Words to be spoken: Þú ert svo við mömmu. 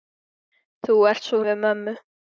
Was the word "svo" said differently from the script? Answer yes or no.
no